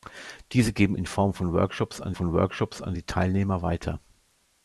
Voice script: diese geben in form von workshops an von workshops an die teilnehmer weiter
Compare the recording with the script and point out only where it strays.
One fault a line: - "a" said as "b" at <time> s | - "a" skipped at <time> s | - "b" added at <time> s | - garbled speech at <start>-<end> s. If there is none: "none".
none